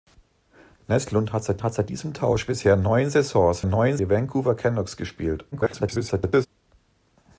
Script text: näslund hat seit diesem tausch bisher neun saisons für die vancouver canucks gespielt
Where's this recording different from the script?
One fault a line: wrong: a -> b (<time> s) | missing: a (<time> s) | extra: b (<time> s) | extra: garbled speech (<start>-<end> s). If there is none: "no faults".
extra: hat seit (1.6 s)
wrong: für -> neun (3.6 s)
extra: garbled speech (5.5-6.5 s)